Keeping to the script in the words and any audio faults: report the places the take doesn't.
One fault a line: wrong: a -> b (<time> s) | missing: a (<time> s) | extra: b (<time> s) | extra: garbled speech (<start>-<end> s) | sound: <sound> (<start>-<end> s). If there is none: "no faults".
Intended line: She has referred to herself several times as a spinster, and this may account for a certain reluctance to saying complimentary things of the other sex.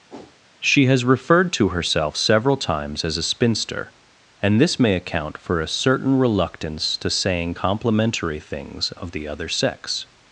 sound: whoosh (0.1-0.4 s)